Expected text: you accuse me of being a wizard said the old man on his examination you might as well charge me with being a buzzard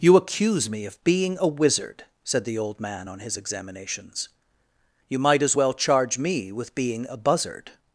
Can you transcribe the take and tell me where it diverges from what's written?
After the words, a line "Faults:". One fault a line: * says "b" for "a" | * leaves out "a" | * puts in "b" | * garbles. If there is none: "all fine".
you accuse me of being a wizard said the old man on his examinations you might as well charge me with being a buzzard
Faults:
* says "examinations" for "examination"